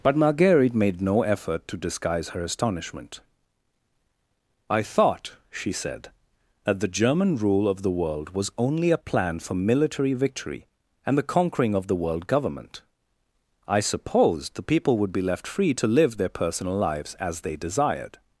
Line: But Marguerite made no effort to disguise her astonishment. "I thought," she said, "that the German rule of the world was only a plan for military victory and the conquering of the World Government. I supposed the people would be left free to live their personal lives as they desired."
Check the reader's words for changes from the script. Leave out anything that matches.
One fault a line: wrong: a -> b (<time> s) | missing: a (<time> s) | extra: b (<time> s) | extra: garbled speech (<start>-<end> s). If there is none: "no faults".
no faults